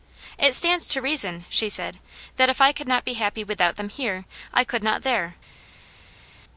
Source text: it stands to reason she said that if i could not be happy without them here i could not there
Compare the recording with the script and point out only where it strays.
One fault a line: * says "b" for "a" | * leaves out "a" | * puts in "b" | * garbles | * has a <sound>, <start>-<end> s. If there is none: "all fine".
all fine